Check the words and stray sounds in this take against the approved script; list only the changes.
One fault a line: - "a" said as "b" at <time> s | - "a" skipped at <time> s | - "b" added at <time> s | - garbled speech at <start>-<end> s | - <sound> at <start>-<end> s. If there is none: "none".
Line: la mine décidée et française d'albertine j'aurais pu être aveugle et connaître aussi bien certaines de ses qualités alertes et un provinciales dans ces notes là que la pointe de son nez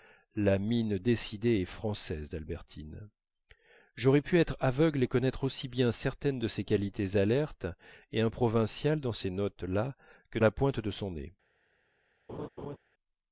- laugh at 12.3-12.8 s